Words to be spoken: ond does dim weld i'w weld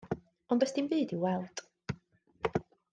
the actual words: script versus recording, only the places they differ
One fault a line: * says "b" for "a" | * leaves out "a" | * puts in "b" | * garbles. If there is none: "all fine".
* says "byd" for "weld"